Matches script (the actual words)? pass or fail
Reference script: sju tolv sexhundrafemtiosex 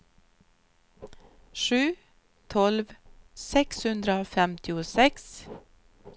pass